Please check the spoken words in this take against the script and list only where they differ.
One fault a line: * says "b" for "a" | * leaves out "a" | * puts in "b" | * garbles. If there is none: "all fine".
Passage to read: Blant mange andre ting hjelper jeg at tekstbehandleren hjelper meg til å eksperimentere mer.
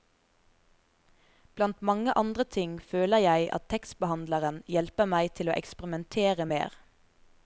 * says "føler" for "hjelper"